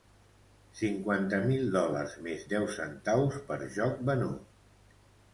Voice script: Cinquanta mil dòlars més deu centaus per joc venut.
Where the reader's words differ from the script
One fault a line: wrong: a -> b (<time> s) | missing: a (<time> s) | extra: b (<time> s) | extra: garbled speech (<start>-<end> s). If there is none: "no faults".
no faults